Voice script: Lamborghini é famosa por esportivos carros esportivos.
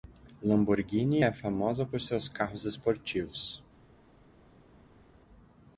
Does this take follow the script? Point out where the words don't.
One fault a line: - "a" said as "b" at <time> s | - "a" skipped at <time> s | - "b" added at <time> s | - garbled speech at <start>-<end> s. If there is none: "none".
- "esportivos" said as "seus" at 2.0 s